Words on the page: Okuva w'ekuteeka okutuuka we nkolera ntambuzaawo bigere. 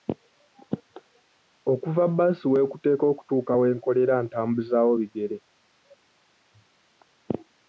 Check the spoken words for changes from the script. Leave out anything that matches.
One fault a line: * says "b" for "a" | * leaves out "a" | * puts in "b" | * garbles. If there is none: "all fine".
* puts in "bbaasi"